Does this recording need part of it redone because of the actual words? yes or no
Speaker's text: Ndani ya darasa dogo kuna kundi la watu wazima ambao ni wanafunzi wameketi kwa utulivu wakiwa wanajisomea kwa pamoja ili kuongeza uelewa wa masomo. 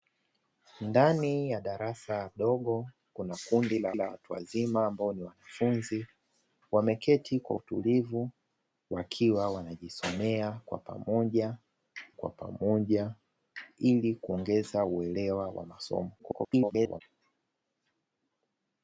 yes